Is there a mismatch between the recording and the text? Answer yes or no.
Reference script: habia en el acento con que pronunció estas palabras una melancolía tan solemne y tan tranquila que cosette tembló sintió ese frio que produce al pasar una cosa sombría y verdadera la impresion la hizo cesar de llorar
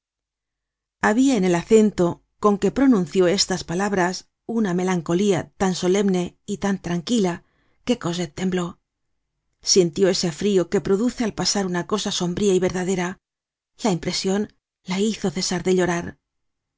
no